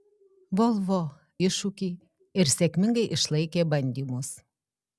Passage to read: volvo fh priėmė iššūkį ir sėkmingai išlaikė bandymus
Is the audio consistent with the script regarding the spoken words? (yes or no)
no